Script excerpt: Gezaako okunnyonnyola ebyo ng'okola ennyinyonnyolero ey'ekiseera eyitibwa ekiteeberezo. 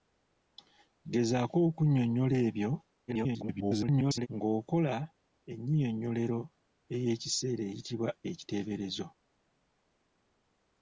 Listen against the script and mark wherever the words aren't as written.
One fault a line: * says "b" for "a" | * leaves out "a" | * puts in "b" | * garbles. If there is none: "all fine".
* garbles